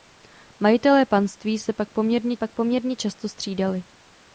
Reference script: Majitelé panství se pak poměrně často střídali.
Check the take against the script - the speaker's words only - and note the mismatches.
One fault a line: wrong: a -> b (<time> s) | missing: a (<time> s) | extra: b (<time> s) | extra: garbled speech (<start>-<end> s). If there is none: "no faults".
extra: pak poměrně (2.4 s)